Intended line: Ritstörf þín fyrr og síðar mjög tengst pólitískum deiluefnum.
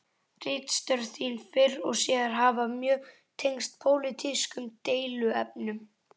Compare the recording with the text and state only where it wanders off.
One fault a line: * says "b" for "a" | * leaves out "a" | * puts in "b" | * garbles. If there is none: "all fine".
* puts in "hafa"